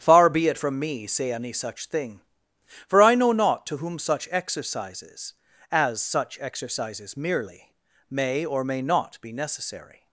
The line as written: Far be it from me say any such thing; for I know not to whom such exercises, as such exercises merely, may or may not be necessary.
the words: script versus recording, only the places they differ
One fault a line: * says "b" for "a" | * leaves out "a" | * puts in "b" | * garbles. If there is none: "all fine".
all fine